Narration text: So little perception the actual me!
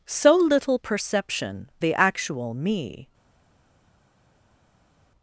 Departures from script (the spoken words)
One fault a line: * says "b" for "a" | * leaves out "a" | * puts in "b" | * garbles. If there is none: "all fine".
all fine